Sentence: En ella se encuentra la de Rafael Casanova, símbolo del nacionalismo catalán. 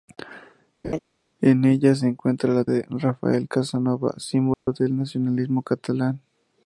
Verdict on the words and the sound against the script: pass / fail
fail